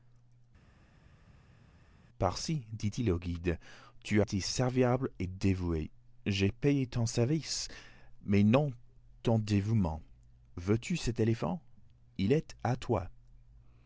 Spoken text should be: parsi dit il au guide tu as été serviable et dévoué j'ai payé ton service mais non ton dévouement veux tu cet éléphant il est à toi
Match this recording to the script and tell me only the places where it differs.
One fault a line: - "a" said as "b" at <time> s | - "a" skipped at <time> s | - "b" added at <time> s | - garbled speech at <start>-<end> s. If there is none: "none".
- "as" skipped at 4.2 s